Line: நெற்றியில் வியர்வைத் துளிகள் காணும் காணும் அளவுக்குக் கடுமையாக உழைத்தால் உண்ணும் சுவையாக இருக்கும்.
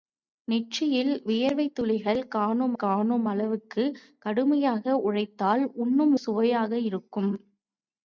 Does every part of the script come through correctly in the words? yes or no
yes